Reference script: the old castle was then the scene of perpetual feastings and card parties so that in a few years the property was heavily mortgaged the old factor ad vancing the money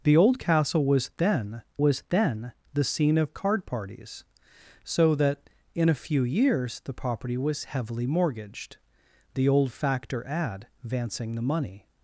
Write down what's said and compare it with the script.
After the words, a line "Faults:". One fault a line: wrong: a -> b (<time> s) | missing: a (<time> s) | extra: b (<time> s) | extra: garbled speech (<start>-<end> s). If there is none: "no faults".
the old castle was then was then the scene of card parties so that in a few years the property was heavily mortgaged the old factor ad vancing the money
Faults:
extra: was then (1.8 s)
missing: perpetual feastings and (3.4 s)